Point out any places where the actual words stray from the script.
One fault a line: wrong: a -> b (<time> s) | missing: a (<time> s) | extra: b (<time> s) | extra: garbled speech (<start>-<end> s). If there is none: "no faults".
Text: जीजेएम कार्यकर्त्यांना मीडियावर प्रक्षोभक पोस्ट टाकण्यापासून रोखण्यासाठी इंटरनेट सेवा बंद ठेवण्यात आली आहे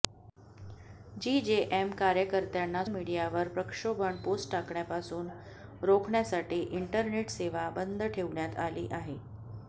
no faults